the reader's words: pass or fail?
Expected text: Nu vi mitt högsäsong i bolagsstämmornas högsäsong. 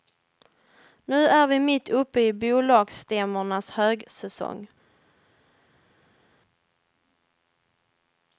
fail